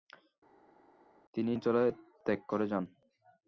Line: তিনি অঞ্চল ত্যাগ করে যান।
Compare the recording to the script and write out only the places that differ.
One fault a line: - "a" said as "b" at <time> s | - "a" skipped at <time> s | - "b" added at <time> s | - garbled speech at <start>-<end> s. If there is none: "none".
none